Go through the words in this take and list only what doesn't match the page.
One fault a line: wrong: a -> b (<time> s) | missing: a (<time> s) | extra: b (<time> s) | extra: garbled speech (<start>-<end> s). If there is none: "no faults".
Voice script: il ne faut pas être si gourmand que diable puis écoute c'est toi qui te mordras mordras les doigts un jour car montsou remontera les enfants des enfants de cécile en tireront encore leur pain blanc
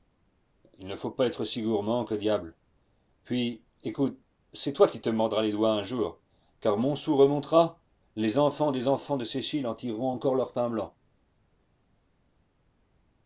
missing: mordras (5.4 s)